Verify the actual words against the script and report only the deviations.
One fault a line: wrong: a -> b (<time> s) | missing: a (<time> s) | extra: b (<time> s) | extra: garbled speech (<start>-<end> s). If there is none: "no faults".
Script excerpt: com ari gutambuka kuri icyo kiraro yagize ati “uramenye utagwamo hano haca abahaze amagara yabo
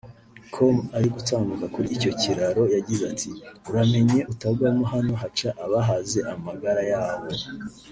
no faults